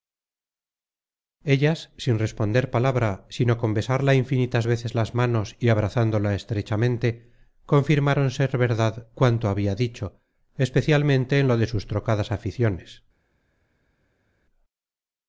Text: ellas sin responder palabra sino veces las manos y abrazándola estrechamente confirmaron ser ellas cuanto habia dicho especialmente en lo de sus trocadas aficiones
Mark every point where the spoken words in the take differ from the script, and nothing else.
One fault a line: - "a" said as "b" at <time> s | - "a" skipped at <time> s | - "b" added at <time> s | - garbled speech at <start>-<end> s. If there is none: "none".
- "con besarla infinitas" added at 3.6 s
- "ellas" said as "verdad" at 8.6 s